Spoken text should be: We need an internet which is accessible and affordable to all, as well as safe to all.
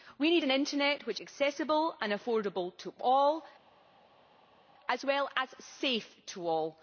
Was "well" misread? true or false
false